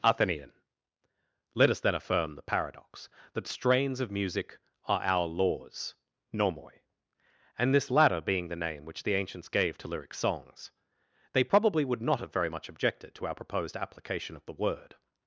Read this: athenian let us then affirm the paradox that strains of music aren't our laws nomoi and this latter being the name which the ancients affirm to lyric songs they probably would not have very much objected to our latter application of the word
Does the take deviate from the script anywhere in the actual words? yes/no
yes